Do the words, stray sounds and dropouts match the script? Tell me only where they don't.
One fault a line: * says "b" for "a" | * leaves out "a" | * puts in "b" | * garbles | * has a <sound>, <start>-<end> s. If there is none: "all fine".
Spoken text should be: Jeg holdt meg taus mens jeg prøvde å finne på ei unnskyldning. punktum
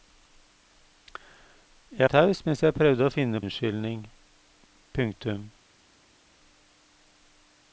* leaves out "holdt meg"
* leaves out "på ei"